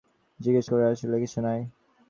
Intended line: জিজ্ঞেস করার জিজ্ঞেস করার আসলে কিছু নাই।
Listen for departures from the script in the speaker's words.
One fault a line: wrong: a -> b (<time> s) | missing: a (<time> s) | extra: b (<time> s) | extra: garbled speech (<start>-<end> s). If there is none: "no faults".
missing: জিজ্ঞেস করার (0.9 s)